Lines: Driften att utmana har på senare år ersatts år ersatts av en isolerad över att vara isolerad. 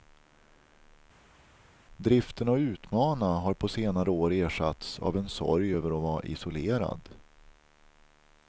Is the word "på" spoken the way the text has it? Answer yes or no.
yes